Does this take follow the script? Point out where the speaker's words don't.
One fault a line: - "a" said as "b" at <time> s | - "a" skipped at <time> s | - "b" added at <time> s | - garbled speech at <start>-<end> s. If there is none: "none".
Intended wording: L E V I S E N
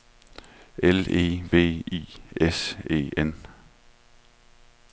none